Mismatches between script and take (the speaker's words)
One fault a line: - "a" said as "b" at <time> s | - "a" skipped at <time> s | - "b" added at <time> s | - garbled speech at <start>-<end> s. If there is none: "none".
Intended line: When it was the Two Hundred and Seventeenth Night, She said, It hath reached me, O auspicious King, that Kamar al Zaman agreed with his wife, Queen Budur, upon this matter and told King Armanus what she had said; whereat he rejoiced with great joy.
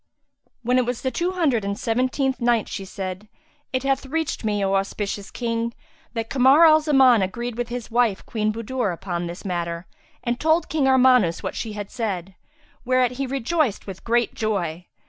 none